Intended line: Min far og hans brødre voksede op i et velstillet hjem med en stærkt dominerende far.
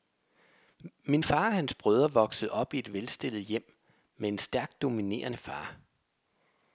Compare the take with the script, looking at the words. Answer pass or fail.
pass